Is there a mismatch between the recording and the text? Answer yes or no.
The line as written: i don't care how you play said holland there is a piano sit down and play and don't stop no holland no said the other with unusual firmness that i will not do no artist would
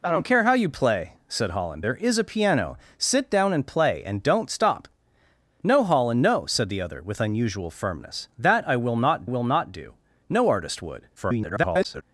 yes